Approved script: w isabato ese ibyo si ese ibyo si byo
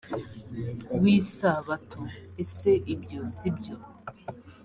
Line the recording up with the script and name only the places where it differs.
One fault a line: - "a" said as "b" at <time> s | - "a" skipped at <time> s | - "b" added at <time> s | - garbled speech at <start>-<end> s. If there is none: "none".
- "ese ibyo si" skipped at 3.5 s